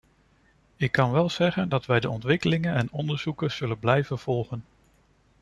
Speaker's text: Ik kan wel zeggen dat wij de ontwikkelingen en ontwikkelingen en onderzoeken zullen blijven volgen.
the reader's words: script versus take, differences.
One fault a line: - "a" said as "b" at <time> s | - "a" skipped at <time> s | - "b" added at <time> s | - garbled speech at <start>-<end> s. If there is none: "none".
- "ontwikkelingen en" skipped at 2.9 s